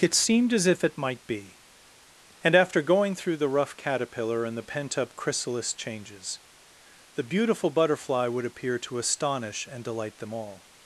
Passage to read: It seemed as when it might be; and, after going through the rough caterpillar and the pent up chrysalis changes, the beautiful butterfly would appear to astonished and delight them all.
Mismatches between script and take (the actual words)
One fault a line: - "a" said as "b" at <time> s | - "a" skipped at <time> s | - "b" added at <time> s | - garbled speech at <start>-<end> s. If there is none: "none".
- "when" said as "if" at 0.7 s
- "astonished" said as "astonish" at 9.0 s